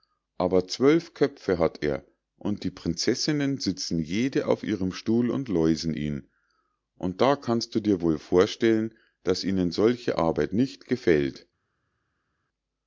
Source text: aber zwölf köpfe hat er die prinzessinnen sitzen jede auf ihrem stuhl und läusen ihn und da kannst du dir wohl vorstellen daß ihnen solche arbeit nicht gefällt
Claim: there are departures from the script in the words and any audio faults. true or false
true